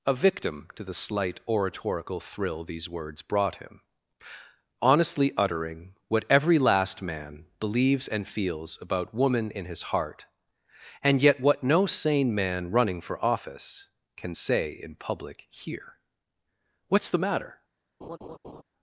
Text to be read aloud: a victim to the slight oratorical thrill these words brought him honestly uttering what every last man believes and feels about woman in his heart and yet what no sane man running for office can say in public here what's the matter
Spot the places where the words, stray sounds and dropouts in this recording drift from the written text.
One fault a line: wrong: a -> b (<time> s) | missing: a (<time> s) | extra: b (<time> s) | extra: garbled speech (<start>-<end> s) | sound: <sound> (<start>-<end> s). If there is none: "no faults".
sound: laugh (18.0-18.6 s)